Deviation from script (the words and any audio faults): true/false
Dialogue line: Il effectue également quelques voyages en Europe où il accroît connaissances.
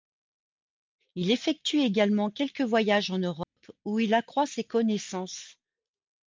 true